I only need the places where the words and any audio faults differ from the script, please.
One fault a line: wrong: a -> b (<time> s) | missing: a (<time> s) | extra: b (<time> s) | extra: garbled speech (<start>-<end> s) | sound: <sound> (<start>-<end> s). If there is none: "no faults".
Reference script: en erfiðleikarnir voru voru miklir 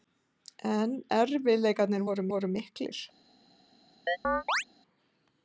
sound: chirp (4.1-4.6 s)